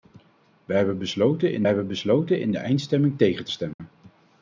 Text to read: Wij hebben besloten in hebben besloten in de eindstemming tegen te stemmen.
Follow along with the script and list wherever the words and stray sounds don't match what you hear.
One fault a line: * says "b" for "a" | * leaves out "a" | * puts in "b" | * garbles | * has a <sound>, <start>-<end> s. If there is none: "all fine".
* has a dropout, 3.7-3.8 s